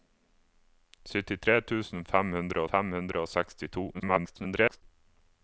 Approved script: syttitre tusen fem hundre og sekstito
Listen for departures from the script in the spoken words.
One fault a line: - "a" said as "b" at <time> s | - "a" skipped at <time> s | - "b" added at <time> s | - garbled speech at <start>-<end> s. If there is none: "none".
- "fem hundre" added at 2.7 s
- garbled speech at 3.9-4.8 s